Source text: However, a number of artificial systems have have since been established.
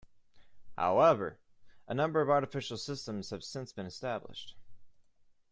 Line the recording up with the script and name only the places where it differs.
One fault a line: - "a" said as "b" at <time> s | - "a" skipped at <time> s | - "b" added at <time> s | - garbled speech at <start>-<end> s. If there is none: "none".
- "have" skipped at 3.4 s